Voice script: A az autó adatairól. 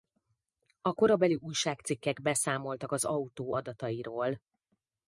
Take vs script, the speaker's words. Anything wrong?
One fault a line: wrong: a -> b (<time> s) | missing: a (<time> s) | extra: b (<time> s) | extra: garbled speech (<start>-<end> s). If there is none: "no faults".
extra: korabeli újságcikkek beszámoltak (0.9 s)